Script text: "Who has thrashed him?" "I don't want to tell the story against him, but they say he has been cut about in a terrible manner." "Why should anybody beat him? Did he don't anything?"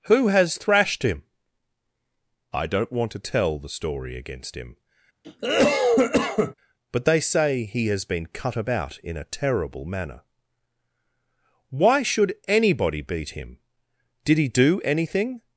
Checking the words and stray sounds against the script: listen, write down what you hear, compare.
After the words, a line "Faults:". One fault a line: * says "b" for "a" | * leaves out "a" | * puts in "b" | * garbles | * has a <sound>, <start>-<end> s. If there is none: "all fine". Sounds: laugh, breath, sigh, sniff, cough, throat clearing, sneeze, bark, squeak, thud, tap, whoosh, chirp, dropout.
"Who has thrashed him?" "I don't want to tell the story against him, but they say he has been cut about in a terrible manner." "Why should anybody beat him? Did he do anything?"
Faults:
* has a cough, 5.2-6.5 s
* says "do" for "don't"